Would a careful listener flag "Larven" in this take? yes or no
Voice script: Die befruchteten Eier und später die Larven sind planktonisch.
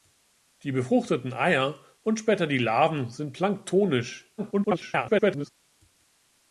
no